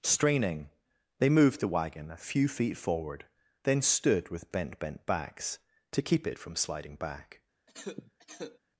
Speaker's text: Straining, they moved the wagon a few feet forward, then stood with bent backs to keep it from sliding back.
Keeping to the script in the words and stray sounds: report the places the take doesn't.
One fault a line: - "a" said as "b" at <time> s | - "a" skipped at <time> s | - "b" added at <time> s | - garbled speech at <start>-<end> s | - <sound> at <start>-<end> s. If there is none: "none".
- "bent" added at 4.8 s
- cough at 7.7-8.6 s